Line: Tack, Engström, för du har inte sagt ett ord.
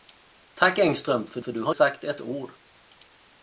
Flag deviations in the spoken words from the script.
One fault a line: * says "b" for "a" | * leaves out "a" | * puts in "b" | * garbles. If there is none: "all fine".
* puts in "för"
* leaves out "inte"